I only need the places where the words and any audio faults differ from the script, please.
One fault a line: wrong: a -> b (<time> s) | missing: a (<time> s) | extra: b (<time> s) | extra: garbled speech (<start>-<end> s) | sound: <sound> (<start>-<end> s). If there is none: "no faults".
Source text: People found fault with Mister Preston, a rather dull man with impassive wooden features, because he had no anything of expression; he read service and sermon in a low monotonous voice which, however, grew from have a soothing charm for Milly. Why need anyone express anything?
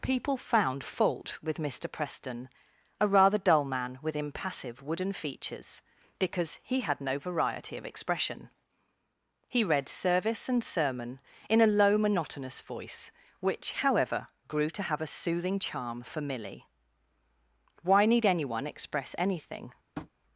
wrong: anything -> variety (7.2 s)
wrong: from -> to (14.7 s)
sound: tap (20.0-20.1 s)